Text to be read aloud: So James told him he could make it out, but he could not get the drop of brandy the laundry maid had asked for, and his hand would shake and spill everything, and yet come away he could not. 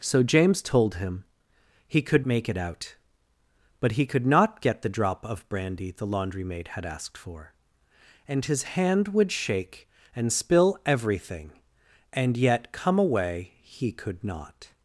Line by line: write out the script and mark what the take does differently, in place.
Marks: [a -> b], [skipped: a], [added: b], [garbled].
So James told him he could make it out, but he could not get the drop of brandy the laundry maid had asked for, and his hand would shake and spill everything, and yet come away he could not.